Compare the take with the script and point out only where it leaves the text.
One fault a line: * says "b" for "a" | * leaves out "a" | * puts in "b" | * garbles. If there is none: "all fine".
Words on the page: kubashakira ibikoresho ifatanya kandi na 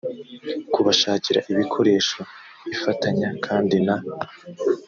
all fine